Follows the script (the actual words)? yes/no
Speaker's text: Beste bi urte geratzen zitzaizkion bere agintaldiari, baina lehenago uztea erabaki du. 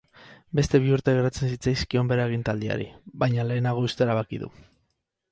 yes